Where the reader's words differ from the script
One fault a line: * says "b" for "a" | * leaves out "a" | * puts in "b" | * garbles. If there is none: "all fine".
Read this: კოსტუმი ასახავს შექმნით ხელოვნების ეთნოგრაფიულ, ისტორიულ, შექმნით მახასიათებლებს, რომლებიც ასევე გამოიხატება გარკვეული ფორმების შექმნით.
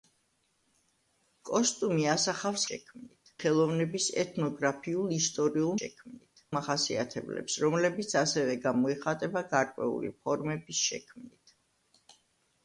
all fine